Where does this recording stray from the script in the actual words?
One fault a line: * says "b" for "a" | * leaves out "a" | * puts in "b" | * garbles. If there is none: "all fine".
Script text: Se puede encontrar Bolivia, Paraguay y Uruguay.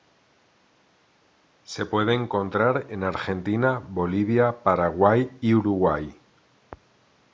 * puts in "en Argentina"